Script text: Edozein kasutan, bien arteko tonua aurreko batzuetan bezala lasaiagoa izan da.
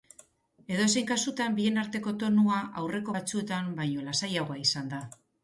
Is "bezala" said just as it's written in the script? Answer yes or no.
no